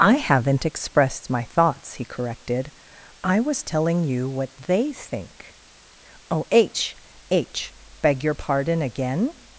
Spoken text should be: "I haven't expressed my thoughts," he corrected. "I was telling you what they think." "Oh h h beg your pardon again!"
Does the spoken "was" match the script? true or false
true